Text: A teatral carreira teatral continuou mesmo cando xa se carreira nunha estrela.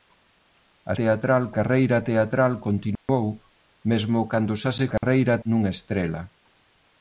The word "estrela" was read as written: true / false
true